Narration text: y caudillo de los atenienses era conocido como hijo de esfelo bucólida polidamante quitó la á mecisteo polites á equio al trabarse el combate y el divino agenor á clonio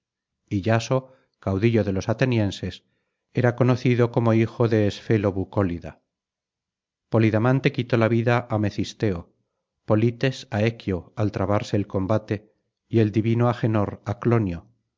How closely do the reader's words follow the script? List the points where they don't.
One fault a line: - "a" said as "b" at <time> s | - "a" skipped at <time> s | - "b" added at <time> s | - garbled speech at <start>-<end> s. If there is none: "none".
- "yaso" added at 0.6 s
- "vida" added at 8.1 s